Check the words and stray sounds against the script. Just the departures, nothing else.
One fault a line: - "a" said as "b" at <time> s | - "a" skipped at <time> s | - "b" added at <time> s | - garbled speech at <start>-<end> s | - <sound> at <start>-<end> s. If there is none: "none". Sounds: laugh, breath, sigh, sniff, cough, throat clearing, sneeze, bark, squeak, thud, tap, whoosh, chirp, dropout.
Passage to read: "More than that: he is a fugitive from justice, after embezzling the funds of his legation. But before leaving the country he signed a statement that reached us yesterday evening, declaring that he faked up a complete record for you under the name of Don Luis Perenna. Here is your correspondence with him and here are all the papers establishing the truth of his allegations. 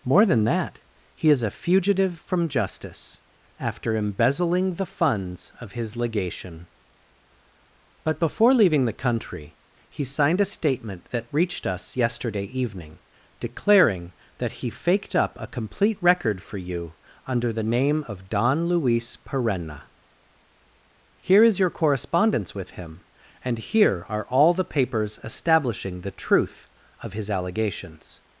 none